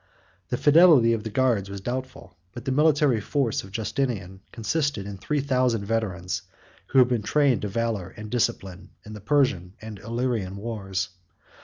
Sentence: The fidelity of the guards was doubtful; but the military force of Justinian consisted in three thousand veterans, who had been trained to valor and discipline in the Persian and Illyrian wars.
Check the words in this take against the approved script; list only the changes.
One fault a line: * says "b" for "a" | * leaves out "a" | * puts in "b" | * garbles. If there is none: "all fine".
all fine